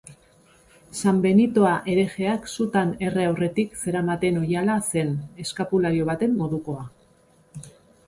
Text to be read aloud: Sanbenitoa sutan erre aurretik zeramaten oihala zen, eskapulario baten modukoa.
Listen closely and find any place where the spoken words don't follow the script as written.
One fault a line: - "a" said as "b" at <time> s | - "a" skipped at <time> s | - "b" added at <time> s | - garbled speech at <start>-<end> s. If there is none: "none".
- "herejeak" added at 1.9 s